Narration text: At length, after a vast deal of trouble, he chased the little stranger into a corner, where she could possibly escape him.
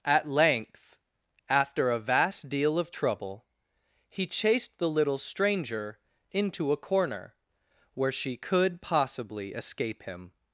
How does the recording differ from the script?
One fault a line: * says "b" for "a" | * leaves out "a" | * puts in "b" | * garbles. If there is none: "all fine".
all fine